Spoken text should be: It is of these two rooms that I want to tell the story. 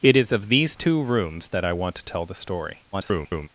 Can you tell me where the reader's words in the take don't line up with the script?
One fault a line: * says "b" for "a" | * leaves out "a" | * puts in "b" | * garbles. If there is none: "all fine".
* garbles